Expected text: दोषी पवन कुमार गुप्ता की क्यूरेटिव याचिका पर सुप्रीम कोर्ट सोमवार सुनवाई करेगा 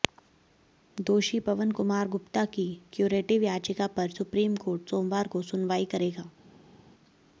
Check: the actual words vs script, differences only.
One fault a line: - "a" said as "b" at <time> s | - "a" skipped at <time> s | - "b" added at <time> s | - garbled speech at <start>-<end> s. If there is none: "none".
- "को" added at 5.3 s